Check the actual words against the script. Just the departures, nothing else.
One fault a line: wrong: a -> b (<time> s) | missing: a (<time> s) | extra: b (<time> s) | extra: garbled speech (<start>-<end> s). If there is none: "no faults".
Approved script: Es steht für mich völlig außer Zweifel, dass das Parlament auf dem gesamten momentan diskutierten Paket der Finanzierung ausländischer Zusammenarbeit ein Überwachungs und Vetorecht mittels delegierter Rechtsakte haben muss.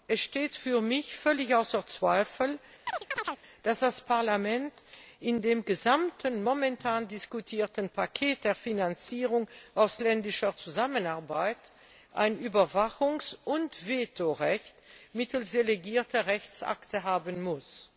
wrong: auf -> in (5.2 s)